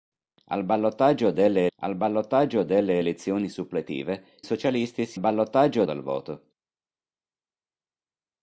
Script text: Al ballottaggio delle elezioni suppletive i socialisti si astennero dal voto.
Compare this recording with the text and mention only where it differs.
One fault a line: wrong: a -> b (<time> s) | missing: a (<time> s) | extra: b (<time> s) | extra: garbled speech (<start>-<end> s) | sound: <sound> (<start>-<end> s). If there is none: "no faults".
extra: al ballottaggio delle (1.8 s)
missing: i (4.4 s)
wrong: astennero -> ballottaggio (5.2 s)